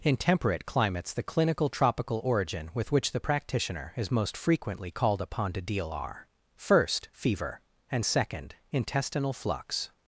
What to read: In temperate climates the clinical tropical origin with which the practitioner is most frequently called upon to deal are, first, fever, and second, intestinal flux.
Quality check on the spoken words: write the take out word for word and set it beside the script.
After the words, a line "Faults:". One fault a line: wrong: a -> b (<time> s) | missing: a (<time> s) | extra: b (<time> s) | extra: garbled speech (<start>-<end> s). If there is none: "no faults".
In temperate climates the clinical tropical origin with which the practitioner is most frequently called upon to deal are, first, fever, and second, intestinal flux.
Faults:
no faults